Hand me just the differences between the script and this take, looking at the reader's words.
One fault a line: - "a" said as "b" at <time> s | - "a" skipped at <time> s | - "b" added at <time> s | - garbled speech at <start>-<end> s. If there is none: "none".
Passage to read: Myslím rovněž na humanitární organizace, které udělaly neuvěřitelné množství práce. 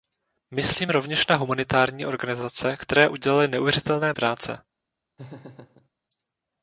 - "množství" skipped at 4.1 s